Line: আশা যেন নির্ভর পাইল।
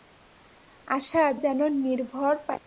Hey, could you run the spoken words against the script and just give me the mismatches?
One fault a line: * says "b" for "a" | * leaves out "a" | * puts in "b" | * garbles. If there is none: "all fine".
all fine